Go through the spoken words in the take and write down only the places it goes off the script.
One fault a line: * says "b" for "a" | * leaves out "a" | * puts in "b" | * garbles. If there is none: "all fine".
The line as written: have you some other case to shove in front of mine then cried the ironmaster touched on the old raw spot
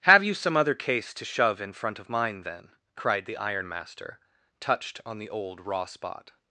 all fine